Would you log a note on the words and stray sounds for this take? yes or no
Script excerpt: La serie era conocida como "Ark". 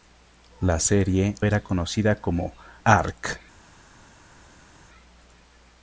no